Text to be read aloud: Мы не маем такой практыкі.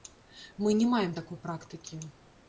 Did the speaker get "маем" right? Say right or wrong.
right